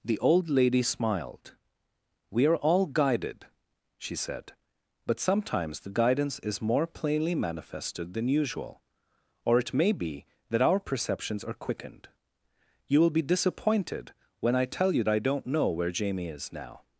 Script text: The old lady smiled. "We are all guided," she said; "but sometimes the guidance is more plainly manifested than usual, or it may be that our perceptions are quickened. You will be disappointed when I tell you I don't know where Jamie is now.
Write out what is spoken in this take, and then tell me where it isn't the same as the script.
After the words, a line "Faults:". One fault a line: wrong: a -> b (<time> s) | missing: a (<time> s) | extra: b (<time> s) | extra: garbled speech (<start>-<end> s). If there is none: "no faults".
The old lady smiled. "We are all guided," she said; "but sometimes the guidance is more plainly manifested than usual, or it may be that our perceptions are quickened. You will be disappointed when I tell you I don't know where Jamie is now.
Faults:
no faults